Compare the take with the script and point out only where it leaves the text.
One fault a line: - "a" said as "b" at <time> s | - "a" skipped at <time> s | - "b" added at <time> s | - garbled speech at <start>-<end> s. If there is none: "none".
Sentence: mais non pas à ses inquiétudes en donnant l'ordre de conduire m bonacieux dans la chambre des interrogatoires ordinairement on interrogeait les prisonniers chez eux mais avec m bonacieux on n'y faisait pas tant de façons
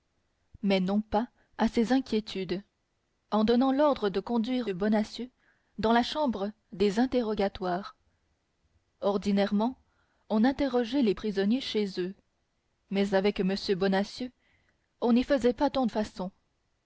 - "m" skipped at 4.7 s
- "de" skipped at 15.9 s